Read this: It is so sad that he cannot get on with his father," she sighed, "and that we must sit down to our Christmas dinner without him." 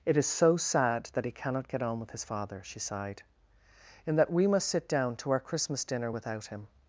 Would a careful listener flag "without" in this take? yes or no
no